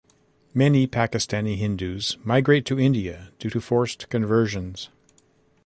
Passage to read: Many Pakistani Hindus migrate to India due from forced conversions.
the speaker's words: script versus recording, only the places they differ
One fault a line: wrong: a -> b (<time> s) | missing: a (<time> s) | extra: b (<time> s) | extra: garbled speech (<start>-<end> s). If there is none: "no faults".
wrong: from -> to (3.5 s)